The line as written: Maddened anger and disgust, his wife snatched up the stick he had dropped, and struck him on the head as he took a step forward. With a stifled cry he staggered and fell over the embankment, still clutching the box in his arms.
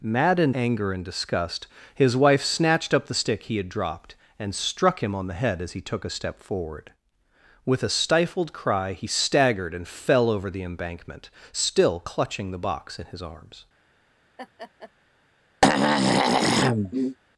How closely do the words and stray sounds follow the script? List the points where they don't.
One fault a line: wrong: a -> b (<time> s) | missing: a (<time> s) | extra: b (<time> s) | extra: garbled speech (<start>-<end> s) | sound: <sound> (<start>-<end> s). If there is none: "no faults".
sound: laugh (14.4-14.9 s)
sound: throat clearing (15.6-17.2 s)